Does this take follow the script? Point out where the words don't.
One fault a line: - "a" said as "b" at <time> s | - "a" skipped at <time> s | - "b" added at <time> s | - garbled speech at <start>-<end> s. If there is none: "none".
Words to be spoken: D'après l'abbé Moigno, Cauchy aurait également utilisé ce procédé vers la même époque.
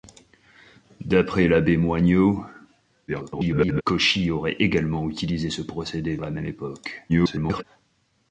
- garbled speech at 3.1-3.8 s
- "vers" skipped at 6.2 s
- garbled speech at 7.1-7.6 s